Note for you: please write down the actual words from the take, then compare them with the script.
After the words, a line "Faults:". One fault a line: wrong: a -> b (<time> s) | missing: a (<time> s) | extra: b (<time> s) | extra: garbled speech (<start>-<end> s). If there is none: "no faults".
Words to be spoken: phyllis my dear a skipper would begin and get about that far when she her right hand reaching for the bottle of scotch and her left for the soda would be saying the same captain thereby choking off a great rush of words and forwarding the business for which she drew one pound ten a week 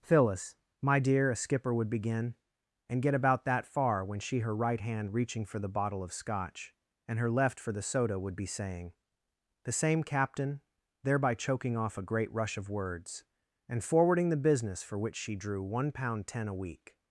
phyllis my dear a skipper would begin and get about that far when she her right hand reaching for the bottle of scotch and her left for the soda would be saying the same captain thereby choking off a great rush of words and forwarding the business for which she drew one pound ten a week
Faults:
no faults